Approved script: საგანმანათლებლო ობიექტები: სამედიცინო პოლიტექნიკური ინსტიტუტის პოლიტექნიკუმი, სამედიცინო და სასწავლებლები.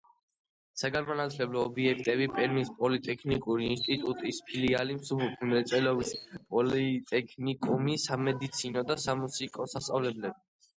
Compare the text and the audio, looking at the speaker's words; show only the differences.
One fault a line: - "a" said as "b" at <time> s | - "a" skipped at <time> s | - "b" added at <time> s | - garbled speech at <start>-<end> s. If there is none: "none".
- "სამედიცინო" said as "პერმის" at 2.4 s
- "ფილიალი მსუბუქი მრეწველობის" added at 4.5 s
- "სამუსიკო" added at 9.1 s